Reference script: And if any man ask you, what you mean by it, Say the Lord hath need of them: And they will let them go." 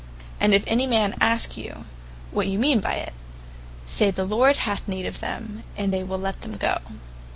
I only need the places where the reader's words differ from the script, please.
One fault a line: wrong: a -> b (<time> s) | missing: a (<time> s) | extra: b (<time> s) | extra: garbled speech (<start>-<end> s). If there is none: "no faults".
no faults